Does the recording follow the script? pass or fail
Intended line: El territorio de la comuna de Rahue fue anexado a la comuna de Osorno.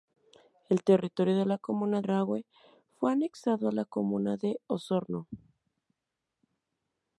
fail